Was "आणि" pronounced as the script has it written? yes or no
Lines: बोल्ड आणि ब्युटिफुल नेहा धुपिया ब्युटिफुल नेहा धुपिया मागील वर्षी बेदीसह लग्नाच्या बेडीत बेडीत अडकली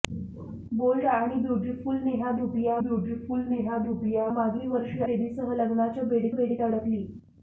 yes